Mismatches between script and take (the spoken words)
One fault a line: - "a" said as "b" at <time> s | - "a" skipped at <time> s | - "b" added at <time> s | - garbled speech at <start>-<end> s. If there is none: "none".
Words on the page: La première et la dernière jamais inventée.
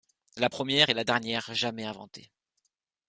none